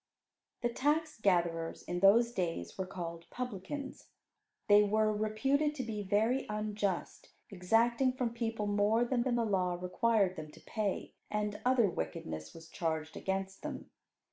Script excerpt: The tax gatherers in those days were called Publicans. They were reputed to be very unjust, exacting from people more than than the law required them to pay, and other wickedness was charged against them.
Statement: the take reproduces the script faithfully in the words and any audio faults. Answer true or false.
true